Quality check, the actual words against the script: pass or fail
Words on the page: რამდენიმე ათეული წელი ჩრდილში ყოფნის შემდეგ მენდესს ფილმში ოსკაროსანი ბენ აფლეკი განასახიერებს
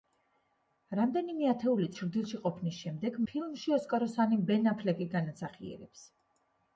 fail